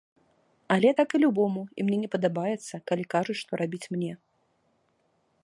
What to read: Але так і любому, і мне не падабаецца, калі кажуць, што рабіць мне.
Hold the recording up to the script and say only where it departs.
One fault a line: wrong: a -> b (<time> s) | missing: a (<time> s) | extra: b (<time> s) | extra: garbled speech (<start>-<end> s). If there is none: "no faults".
no faults